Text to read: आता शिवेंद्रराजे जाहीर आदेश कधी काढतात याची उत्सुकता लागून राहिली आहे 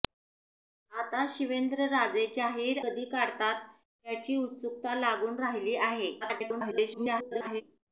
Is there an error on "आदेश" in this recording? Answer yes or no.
yes